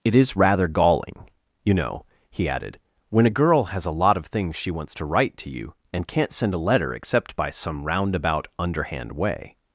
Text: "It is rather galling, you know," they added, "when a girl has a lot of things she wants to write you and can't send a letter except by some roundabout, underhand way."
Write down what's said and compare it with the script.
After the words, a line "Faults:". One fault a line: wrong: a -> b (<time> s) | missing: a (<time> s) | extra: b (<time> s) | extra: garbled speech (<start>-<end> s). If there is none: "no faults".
"It is rather galling, you know," he added, "when a girl has a lot of things she wants to write to you and can't send a letter except by some roundabout, underhand way."
Faults:
wrong: they -> he (2.3 s)
extra: to (5.4 s)